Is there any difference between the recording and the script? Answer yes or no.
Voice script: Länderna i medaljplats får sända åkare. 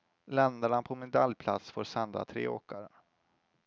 yes